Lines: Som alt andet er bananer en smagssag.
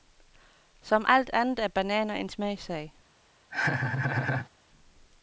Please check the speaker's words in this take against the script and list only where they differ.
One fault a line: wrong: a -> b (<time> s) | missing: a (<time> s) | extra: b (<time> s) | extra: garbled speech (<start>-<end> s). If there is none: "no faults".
no faults